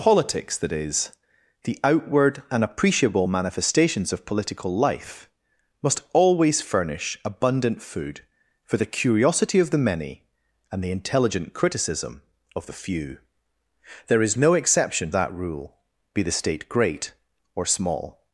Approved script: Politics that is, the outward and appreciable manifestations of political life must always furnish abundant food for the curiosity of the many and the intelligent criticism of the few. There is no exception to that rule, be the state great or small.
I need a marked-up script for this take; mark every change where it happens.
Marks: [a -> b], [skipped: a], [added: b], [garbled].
Politics that is, the outward and appreciable manifestations of political life must always furnish abundant food for the curiosity of the many and the intelligent criticism of the few. There is no exception [skipped: to] that rule, be the state great or small.